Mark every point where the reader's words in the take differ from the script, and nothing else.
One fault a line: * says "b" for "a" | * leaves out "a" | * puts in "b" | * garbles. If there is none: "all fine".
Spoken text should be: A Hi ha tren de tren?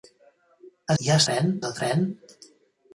all fine